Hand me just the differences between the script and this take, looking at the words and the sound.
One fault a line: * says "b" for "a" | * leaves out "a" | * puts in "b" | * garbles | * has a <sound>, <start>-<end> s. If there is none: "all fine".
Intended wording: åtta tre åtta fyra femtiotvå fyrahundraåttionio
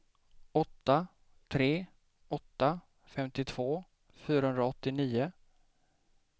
* leaves out "fyra"